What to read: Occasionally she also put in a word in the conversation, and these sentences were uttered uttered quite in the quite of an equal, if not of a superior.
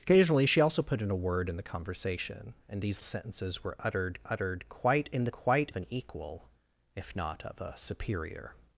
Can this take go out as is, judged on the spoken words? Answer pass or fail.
pass